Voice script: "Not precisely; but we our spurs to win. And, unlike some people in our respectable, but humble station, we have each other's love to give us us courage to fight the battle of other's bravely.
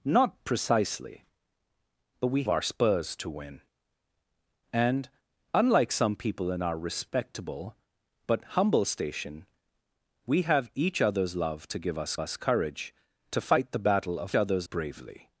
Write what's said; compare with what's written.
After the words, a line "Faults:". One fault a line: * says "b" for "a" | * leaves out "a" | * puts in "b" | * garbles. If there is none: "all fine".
"Not precisely; but we our spurs to win. And, unlike some people in our respectable, but humble station, we have each other's love to give us us courage to fight the battle of other's bravely.
Faults:
all fine